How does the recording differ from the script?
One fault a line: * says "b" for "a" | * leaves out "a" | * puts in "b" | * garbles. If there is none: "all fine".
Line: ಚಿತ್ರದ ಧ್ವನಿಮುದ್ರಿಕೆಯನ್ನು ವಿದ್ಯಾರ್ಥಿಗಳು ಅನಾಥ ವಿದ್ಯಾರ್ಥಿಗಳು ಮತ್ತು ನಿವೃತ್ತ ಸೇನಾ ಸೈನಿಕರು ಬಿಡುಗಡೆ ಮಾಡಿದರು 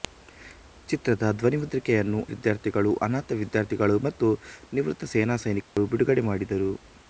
all fine